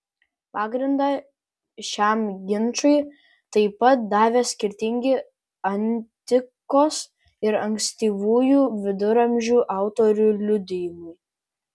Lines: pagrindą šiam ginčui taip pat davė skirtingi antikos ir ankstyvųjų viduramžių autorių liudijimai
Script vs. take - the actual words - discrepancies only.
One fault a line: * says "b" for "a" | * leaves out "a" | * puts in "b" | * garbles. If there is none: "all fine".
all fine